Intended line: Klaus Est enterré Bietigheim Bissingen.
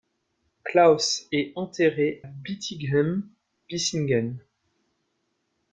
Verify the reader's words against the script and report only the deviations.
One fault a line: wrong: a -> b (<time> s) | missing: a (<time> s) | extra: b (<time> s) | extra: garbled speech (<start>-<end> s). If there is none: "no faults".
no faults